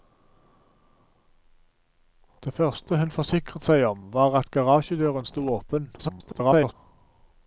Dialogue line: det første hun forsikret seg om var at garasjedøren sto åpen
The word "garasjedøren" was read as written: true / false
true